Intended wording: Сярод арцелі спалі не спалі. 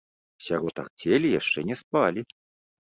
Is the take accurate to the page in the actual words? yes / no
no